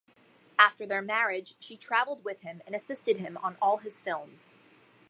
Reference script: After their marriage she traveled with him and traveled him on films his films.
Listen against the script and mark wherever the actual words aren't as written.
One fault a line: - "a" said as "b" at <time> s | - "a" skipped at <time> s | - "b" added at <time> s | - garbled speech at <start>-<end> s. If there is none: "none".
- "traveled" said as "assisted" at 2.8 s
- "films" said as "all" at 3.6 s